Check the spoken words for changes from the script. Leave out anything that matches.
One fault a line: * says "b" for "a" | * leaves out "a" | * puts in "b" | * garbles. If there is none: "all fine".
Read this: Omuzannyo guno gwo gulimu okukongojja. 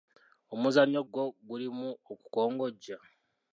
* leaves out "guno"